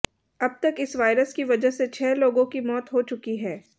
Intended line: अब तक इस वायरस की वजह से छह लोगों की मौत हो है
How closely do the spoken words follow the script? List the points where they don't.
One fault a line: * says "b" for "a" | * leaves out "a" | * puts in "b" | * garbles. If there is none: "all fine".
* puts in "चुकी"